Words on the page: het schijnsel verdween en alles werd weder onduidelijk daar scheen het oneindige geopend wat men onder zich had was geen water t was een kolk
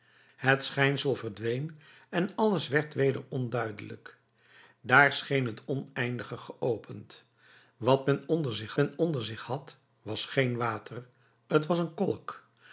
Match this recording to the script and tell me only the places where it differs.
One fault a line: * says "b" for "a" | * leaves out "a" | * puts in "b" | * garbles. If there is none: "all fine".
* puts in "men onder zich"